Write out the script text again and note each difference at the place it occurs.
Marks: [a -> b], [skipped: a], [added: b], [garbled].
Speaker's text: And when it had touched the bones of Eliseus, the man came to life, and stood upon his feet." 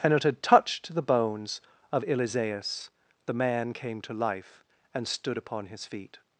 And [skipped: when] it had touched the bones of Eliseus, the man came to life, and stood upon his feet."